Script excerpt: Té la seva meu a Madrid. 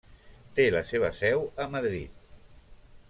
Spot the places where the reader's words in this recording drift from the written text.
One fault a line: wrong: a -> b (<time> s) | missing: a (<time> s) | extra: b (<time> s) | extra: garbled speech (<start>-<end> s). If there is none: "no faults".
wrong: meu -> seu (1.2 s)